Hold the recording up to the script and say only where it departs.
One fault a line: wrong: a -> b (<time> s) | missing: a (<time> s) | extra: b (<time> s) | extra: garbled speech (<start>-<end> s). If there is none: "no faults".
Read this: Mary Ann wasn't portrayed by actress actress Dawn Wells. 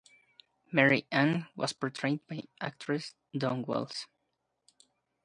wrong: wasn't -> was (1.6 s)
missing: actress (3.1 s)